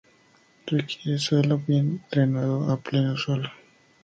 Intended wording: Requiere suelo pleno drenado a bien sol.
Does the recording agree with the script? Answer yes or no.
no